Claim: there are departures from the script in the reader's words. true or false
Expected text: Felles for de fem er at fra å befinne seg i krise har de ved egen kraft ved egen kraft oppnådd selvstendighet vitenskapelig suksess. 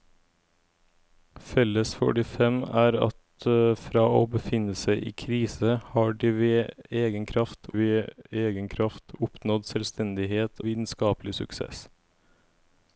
false